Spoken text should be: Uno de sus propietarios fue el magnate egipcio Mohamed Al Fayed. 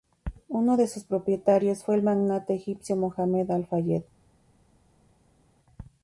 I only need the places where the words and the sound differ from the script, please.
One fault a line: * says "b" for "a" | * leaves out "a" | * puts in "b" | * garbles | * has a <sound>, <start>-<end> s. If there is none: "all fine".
all fine